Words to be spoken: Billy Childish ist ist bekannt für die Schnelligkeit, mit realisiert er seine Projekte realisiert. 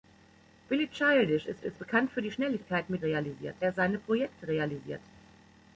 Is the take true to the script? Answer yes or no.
yes